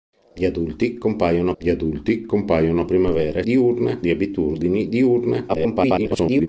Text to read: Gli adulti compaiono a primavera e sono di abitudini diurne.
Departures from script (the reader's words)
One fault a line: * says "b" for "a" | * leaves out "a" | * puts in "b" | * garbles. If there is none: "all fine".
* puts in "gli adulti compaiono"
* says "diurne" for "sono"
* garbles